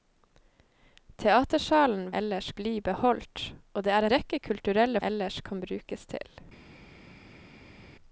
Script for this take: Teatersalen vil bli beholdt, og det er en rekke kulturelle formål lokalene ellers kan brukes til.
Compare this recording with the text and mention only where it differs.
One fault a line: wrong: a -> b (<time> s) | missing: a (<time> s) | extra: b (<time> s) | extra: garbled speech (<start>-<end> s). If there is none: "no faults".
wrong: vil -> ellers (2.2 s)
missing: en (4.1 s)
missing: formål lokalene (5.0 s)